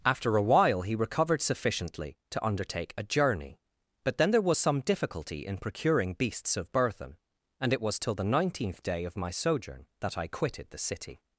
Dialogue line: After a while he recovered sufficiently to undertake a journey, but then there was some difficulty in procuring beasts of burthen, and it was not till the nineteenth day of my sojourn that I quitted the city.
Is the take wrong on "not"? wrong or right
wrong